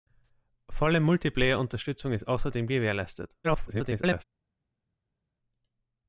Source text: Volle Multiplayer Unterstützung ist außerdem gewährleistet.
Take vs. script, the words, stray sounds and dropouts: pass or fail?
fail